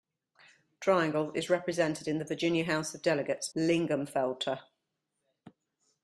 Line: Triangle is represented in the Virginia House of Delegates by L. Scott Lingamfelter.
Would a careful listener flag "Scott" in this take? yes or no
yes